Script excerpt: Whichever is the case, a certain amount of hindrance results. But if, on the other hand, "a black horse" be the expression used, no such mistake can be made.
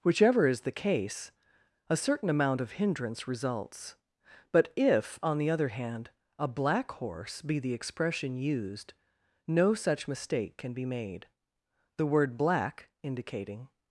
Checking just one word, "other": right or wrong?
right